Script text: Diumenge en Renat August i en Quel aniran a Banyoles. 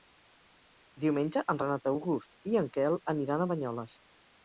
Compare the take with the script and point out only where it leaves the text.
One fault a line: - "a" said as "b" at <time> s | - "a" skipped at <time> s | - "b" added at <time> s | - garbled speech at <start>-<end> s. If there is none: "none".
none